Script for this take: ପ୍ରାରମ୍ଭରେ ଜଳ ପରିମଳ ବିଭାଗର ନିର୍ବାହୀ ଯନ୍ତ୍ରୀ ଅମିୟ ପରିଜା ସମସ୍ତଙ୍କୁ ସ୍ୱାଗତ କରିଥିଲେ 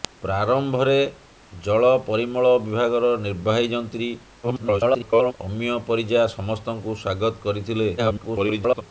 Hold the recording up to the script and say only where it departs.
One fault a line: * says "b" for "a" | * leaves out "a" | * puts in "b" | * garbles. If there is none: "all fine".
* garbles
* garbles